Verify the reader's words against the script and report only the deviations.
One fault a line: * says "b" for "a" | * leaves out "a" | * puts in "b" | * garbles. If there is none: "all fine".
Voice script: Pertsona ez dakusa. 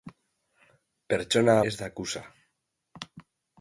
all fine